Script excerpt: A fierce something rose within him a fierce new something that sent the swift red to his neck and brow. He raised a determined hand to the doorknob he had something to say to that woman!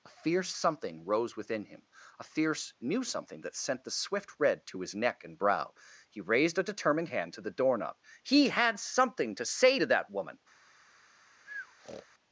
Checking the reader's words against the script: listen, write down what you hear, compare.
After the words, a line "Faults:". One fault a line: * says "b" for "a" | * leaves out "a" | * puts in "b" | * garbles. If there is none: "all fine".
A fierce something rose within him a fierce new something that sent the swift red to his neck and brow. He raised a determined hand to the doorknob he had something to say to that woman!
Faults:
all fine